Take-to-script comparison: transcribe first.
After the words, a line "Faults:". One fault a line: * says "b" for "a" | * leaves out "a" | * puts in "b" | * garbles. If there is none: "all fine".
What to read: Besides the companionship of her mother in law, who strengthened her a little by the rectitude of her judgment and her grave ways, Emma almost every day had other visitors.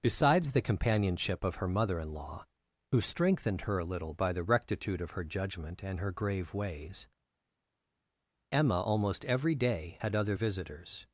Besides the companionship of her mother in law, who strengthened her a little by the rectitude of her judgment and her grave ways, Emma almost every day had other visitors.
Faults:
all fine